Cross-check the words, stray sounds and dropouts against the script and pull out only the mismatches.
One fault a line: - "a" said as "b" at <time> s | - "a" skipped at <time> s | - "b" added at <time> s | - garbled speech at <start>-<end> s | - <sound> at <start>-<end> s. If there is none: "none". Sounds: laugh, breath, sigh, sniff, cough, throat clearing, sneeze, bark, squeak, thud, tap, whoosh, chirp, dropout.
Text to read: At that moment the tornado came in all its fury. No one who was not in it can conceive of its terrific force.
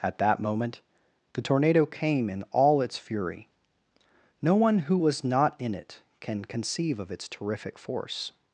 none